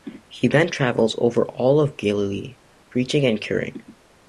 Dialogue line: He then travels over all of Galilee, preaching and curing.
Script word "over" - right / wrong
right